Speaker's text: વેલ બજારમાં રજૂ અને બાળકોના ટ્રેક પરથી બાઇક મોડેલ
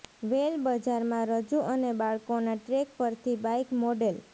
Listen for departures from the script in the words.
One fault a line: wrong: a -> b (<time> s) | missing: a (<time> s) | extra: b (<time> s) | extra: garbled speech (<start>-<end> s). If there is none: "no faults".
no faults